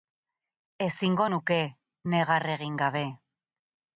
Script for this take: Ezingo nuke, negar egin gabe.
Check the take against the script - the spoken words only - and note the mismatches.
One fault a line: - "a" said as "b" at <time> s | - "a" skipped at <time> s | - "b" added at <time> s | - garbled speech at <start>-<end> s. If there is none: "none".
none